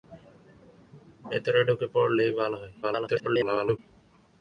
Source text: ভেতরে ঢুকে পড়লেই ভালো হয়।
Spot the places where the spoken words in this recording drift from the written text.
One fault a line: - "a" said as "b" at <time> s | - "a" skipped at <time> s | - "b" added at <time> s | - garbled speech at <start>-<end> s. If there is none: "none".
- garbled speech at 2.8-3.8 s